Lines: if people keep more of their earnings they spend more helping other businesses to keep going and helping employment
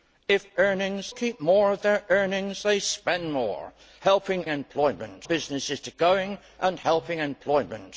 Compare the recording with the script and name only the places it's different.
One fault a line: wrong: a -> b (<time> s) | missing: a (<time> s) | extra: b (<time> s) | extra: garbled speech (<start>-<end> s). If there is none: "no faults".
wrong: people -> earnings (0.6 s)
wrong: other -> employment (4.5 s)
missing: keep (5.9 s)